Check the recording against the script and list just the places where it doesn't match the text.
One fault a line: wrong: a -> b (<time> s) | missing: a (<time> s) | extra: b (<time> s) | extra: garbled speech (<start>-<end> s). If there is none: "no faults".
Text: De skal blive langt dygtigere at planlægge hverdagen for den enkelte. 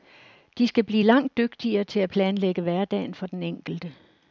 extra: til (1.8 s)